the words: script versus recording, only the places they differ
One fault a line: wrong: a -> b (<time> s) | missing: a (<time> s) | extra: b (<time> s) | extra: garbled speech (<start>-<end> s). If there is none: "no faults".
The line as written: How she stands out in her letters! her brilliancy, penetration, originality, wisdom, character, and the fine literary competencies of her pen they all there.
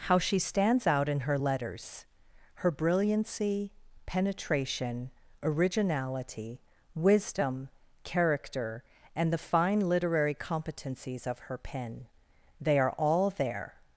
extra: are (12.8 s)